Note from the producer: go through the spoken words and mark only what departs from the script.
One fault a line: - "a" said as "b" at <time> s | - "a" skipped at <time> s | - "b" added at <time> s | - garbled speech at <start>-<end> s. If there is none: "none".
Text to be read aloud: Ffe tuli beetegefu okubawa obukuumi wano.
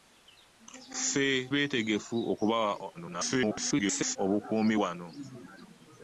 - "tuli" skipped at 1.3 s
- garbled speech at 2.9-4.2 s